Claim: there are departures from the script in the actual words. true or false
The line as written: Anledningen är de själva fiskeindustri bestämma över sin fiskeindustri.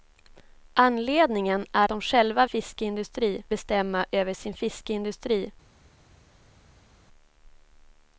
false